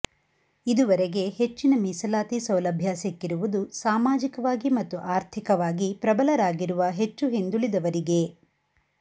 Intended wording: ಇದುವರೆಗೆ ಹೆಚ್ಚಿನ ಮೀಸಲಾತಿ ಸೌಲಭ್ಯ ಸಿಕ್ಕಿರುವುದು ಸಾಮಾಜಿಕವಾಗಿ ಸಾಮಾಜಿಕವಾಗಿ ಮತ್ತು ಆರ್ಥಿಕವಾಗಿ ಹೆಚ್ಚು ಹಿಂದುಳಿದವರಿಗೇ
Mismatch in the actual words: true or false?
true